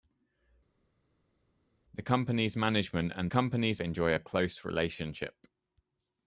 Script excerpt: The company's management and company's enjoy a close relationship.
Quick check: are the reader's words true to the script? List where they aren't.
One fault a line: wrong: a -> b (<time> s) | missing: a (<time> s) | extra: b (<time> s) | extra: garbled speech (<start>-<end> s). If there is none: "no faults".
no faults